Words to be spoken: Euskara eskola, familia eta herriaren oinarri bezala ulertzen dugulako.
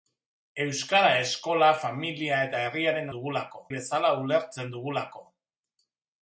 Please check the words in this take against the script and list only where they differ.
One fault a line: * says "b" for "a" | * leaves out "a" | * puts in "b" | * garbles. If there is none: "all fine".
* says "dugulako" for "oinarri"